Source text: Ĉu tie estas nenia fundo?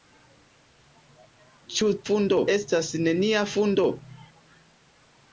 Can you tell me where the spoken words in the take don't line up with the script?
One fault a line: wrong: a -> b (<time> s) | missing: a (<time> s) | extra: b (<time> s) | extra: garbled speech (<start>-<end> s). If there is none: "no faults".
wrong: tie -> fundo (2.1 s)